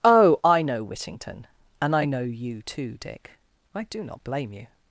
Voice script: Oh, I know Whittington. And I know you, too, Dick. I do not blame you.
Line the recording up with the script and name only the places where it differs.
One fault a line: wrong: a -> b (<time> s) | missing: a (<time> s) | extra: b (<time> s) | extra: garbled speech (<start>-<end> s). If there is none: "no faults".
no faults